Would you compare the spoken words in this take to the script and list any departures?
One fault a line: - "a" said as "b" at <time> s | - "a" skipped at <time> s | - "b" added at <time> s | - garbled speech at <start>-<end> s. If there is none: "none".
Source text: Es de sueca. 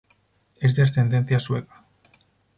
- "ascendencia" added at 0.8 s